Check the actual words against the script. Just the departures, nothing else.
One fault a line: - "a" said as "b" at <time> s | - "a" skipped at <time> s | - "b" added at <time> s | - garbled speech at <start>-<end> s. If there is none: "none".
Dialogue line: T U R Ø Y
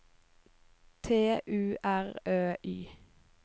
none